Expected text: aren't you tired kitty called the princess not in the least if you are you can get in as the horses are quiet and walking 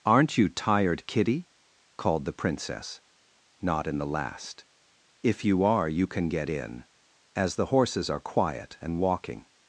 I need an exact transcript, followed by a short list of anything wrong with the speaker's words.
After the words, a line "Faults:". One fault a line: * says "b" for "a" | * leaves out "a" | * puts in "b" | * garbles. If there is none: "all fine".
aren't you tired kitty called the princess not in the last if you are you can get in as the horses are quiet and walking
Faults:
* says "last" for "least"